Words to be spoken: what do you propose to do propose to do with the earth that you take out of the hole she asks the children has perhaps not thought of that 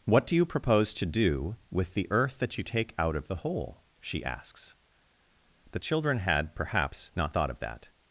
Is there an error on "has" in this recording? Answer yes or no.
yes